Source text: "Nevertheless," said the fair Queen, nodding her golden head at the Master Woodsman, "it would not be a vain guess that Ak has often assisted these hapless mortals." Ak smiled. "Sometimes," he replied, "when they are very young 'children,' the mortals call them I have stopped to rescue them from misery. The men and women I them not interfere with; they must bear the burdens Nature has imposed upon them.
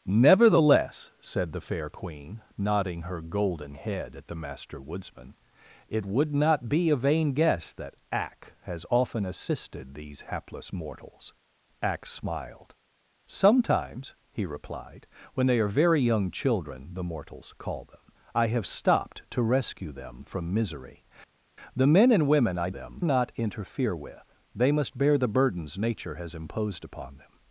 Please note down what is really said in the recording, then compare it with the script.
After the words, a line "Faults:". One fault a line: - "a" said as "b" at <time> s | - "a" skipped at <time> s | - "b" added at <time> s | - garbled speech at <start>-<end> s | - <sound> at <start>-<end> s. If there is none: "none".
"Nevertheless," said the fair Queen, nodding her golden head at the Master Woodsman, "it would not be a vain guess that Ak has often assisted these hapless mortals." Ak smiled. "Sometimes," he replied, "when they are very young 'children,' the mortals call them I have stopped to rescue them from misery. The men and women I them not interfere with; they must bear the burdens Nature has imposed upon them.
Faults:
none